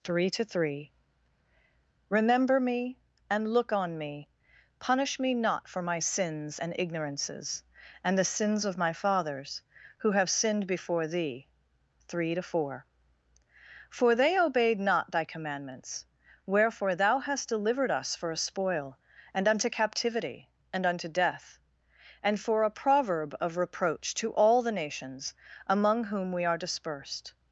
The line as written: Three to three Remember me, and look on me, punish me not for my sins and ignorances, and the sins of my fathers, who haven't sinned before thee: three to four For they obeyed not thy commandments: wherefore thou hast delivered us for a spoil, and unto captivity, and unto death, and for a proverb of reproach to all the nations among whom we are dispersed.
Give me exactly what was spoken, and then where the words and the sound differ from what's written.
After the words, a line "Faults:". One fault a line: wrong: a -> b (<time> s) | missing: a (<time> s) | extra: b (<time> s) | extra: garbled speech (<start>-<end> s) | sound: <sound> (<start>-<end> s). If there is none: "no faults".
Three to three Remember me, and look on me, punish me not for my sins and ignorances, and the sins of my fathers, who have sinned before thee: three to four For they obeyed not thy commandments: wherefore thou hast delivered us for a spoil, and unto captivity, and unto death, and for a proverb of reproach to all the nations among whom we are dispersed.
Faults:
wrong: haven't -> have (10.1 s)